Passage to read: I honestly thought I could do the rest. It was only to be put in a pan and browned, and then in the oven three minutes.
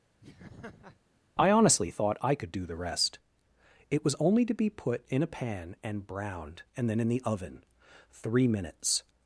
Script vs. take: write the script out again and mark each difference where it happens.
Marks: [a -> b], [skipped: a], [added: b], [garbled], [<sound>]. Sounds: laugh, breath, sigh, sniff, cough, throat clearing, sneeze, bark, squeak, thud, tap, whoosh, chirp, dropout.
[laugh] I honestly thought I could do the rest. It was only to be put in a pan and browned, and then in the oven three minutes.